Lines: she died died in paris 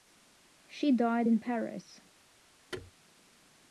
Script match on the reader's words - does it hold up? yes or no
no